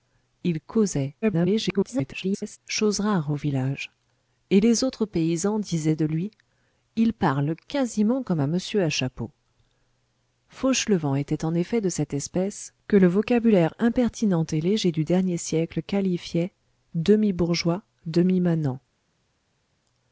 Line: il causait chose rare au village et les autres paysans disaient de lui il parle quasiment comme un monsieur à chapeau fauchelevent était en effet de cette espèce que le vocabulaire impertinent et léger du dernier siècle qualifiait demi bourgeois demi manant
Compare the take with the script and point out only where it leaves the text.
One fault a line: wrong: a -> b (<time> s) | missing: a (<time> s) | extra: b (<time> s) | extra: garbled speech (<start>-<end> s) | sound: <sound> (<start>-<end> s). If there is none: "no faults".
extra: garbled speech (1.2-2.6 s)